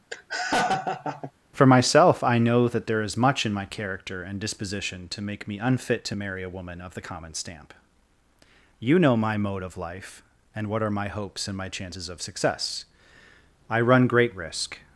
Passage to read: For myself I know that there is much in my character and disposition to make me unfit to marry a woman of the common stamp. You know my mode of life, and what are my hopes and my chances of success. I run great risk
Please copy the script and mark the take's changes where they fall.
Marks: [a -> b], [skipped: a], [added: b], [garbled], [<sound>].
[laugh] For myself I know that there is much in my character and disposition to make me unfit to marry a woman of the common stamp. You know my mode of life, and what are my hopes and my chances of success. I run great risk